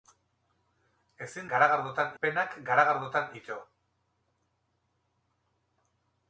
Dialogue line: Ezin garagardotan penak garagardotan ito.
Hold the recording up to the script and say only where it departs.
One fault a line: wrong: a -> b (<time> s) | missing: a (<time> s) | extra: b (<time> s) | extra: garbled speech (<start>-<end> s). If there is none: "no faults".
no faults